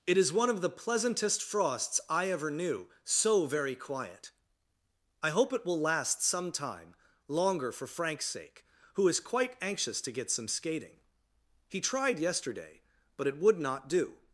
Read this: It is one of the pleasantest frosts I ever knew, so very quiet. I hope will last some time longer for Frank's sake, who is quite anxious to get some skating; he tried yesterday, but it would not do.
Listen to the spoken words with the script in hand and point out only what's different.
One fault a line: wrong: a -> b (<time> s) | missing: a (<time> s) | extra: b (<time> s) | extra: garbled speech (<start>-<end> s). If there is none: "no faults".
extra: it (5.5 s)